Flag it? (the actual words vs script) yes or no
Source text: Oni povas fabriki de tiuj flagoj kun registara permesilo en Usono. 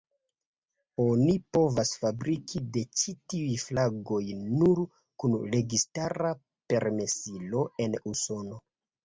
yes